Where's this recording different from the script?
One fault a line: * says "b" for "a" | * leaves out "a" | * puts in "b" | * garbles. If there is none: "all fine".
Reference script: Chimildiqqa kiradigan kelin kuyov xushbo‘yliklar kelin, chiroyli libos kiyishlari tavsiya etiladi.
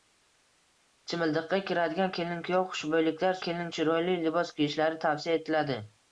all fine